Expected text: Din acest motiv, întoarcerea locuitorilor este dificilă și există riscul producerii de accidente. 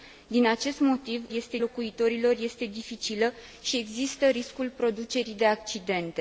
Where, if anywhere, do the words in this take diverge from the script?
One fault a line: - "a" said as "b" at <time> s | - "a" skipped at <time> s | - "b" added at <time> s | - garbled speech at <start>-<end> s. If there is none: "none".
- "întoarcerea" said as "este" at 1.3 s